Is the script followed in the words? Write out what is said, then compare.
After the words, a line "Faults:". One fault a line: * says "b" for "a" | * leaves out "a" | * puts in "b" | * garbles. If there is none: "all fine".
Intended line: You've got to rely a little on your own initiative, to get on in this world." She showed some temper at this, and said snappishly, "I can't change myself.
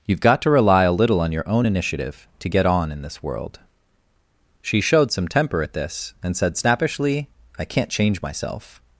You've got to rely a little on your own initiative, to get on in this world." She showed some temper at this, and said snappishly, "I can't change myself.
Faults:
all fine